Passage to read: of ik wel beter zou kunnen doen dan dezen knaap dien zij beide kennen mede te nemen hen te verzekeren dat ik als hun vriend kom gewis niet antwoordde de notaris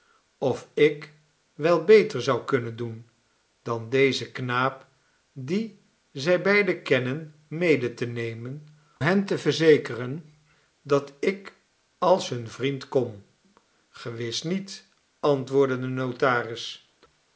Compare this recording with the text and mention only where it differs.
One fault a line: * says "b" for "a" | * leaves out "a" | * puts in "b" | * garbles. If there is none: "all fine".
all fine